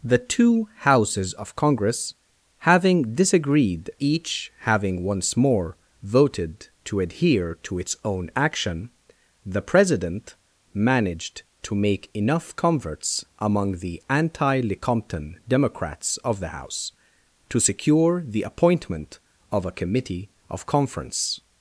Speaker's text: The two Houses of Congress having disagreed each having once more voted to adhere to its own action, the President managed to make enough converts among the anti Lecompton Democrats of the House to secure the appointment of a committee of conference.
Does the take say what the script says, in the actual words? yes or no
yes